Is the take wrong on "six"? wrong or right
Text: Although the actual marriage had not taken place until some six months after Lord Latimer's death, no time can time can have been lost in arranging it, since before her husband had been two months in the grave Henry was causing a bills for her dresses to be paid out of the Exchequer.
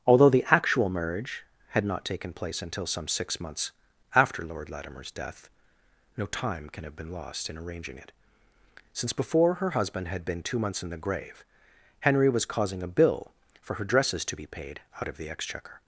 right